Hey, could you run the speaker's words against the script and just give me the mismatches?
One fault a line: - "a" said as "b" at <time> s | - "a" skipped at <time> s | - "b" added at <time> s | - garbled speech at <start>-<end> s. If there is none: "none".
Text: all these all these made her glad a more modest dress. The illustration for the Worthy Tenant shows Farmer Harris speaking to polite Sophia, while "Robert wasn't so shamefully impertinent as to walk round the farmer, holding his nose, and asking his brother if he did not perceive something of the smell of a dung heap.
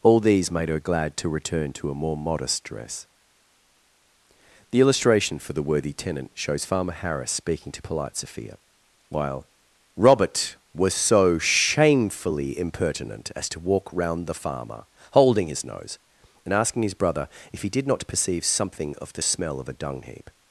- "all these" skipped at 0.5 s
- "to return to" added at 1.2 s
- "wasn't" said as "was" at 10.7 s